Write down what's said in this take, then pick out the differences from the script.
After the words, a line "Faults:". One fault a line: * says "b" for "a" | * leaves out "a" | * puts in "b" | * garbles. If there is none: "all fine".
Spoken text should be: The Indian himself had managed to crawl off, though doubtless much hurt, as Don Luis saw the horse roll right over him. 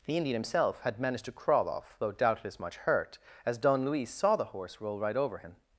The Indian himself had managed to crawl off, though doubtless much hurt, as Don Luis saw the horse roll right over him.
Faults:
all fine